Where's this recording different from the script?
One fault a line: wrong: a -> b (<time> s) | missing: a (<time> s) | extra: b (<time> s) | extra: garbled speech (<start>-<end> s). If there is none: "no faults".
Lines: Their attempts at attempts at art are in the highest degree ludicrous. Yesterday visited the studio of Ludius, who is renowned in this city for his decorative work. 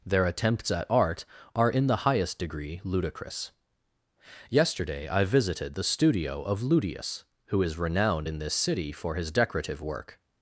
missing: attempts at (0.9 s)
extra: I (5.1 s)